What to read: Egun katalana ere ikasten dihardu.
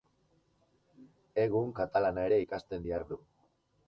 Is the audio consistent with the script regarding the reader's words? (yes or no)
yes